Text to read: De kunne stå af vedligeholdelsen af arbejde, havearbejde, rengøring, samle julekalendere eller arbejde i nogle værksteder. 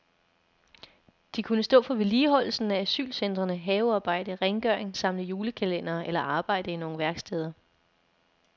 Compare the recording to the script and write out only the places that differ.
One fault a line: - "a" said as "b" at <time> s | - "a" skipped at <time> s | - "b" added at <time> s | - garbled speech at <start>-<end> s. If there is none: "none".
- "af" said as "for" at 1.8 s
- "arbejde" said as "asylcentrene" at 2.8 s